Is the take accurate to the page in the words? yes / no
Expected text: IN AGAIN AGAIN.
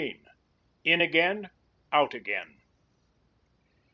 no